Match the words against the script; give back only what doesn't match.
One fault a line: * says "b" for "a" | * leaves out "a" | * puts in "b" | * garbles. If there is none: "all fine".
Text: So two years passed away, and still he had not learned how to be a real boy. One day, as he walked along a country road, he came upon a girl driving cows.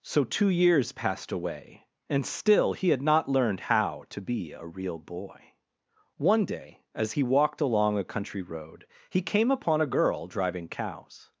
all fine